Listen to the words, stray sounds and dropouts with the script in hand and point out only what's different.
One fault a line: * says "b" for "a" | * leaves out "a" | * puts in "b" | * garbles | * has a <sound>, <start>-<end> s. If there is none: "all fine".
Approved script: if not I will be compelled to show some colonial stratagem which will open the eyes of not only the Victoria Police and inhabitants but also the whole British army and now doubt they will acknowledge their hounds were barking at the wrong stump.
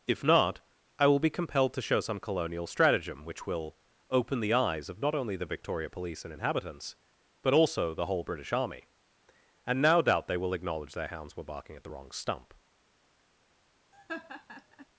* has a laugh, 13.9-14.9 s